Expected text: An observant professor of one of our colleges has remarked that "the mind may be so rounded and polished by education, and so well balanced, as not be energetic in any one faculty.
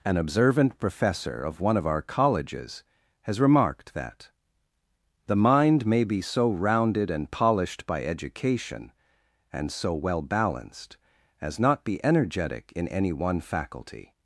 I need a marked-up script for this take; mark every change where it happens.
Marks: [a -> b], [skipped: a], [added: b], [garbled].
An observant professor of one of our colleges has remarked that "the mind may be so rounded and polished by education, and so well balanced, as not be energetic in any one faculty.